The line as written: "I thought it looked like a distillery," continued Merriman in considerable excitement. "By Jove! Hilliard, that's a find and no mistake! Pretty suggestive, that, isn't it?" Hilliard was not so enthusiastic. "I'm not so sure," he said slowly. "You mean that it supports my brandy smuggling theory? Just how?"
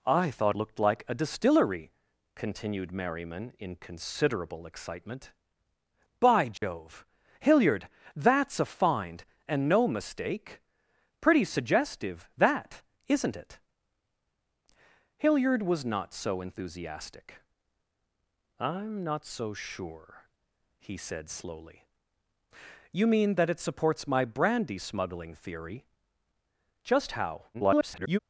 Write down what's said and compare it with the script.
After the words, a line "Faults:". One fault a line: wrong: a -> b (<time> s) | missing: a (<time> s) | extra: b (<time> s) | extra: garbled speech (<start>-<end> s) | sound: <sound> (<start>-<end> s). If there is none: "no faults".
"I thought looked like a distillery," continued Merriman in considerable excitement. "By Jove! Hilliard, that's a find and no mistake! Pretty suggestive, that, isn't it?" Hilliard was not so enthusiastic. "I'm not so sure," he said slowly. "You mean that it supports my brandy smuggling theory? Just how?" [garbled]
Faults:
missing: it (0.6 s)
sound: dropout (6.6-6.6 s)
extra: garbled speech (27.5-28.2 s)